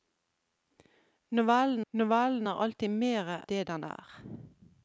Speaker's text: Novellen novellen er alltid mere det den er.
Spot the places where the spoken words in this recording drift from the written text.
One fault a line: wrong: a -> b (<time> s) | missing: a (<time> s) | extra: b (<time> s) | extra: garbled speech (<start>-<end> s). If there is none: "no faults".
no faults